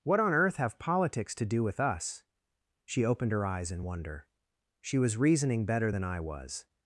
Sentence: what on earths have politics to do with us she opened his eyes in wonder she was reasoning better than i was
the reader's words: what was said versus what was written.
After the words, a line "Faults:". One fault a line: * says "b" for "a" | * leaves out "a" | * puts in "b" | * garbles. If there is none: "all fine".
what on earth have politics to do with us she opened her eyes in wonder she was reasoning better than i was
Faults:
* says "earth" for "earths"
* says "her" for "his"